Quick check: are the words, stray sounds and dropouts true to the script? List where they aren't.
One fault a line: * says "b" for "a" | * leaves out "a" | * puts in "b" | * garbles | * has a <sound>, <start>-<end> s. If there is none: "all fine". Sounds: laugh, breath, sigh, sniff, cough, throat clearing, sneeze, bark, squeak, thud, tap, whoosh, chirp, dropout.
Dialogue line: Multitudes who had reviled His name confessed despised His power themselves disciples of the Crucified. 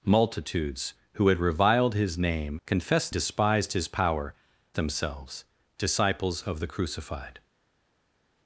all fine